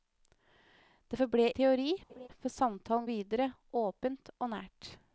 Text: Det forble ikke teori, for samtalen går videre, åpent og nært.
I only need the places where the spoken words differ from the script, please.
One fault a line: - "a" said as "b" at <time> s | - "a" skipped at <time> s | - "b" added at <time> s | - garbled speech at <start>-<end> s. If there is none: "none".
- "ikke" skipped at 1.5 s
- "går" skipped at 3.1 s